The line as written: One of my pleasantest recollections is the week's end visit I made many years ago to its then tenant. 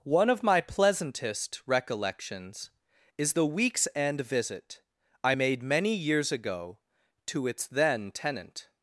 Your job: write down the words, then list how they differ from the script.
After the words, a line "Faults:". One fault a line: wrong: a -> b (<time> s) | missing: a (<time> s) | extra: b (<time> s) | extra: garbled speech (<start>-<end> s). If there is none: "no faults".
One of my pleasantest recollections is the week's end visit I made many years ago to its then tenant.
Faults:
no faults